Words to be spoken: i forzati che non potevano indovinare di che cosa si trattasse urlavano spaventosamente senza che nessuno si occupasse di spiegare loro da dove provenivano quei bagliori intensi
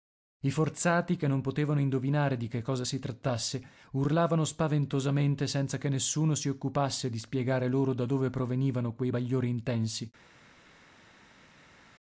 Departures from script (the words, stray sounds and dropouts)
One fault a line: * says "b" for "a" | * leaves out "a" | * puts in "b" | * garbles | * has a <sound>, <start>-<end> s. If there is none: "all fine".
all fine